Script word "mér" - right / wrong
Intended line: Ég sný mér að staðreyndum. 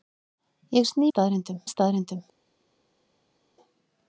wrong